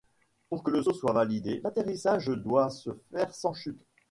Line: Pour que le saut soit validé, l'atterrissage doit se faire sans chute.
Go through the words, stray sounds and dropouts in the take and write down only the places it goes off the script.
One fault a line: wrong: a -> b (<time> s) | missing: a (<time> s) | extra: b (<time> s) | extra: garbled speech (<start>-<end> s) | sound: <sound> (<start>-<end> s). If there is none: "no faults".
no faults